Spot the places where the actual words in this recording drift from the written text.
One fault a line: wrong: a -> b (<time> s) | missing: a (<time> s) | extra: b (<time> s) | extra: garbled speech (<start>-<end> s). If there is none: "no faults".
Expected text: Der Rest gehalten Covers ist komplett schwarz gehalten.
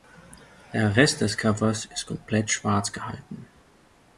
wrong: gehalten -> des (1.2 s)